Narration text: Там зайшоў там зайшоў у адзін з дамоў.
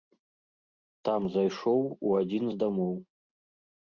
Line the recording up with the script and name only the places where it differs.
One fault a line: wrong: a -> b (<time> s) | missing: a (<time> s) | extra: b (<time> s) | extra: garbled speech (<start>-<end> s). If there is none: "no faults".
missing: там зайшоў (1.8 s)